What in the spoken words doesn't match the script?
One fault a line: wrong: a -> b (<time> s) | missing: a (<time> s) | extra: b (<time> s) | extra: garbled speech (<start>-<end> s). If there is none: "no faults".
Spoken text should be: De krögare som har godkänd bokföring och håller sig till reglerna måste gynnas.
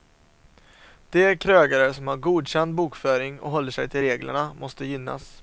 no faults